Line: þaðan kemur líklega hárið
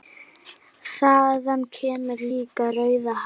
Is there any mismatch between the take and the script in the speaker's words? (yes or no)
yes